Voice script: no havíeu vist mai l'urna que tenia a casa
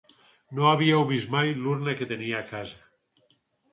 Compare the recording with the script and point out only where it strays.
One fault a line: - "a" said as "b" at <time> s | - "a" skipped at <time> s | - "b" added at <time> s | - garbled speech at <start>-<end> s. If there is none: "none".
none